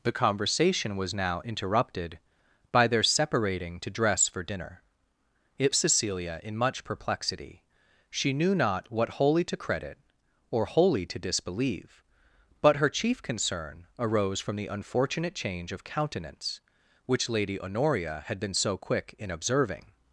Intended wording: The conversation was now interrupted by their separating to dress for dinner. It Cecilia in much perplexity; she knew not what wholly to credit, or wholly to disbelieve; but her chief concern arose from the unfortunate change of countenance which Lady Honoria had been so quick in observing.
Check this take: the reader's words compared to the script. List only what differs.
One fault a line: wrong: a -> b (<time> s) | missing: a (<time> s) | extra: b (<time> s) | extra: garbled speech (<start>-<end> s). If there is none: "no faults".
no faults